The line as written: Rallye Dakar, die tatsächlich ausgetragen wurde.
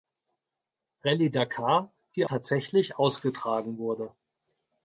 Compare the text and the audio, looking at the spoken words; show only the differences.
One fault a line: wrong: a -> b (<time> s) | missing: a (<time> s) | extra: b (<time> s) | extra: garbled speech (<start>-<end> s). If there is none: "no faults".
no faults